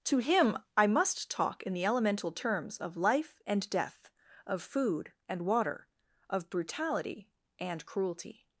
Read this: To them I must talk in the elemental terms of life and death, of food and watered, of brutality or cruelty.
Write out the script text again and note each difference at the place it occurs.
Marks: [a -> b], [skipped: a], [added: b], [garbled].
To [them -> him] I must talk in the elemental terms of life and death, of food and [watered, -> water] of brutality [or -> and] cruelty.